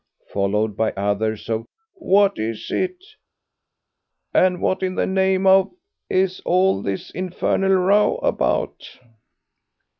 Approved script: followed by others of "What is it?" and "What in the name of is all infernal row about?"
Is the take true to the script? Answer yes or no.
no